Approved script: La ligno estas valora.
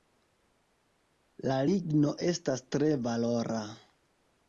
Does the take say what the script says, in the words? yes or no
no